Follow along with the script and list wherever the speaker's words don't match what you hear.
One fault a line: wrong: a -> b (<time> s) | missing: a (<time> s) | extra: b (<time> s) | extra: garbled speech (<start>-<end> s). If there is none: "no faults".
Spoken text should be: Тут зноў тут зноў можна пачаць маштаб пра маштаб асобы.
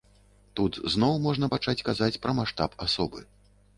missing: тут зноў (1.1 s)
wrong: маштаб -> казаць (1.9 s)